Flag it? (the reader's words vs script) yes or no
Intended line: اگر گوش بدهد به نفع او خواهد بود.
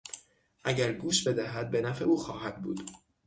no